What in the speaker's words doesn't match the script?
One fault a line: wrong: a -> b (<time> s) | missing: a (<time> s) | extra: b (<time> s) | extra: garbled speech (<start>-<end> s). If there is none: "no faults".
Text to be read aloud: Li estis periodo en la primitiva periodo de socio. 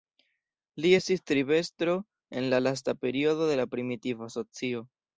wrong: periodo -> tribestro (1.3 s)
wrong: primitiva -> lasta (2.6 s)
extra: la primitiva (3.6 s)